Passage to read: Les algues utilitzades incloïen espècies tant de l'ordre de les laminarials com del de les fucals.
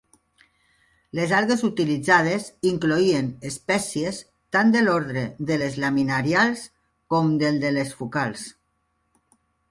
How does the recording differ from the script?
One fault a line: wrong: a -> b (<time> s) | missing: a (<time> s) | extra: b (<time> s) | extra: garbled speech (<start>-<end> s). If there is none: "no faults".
no faults